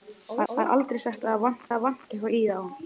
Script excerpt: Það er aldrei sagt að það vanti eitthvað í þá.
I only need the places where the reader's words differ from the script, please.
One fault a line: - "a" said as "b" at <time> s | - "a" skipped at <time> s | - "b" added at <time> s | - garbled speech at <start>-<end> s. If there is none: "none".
- "það" added at 0.5 s
- "það vanti" added at 1.7 s